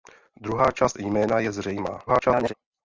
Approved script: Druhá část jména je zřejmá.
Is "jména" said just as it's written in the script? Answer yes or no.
yes